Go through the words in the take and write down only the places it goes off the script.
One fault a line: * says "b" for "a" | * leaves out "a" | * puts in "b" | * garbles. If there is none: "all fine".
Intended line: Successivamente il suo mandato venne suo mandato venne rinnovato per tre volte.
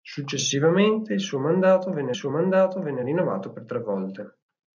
all fine